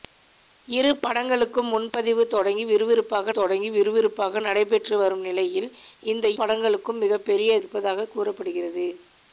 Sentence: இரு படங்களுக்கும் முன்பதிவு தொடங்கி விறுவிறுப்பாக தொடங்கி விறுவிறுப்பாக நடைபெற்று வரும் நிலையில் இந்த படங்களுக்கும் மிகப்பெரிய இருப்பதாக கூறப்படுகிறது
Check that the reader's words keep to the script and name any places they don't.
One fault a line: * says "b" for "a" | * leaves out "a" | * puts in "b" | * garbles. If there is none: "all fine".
all fine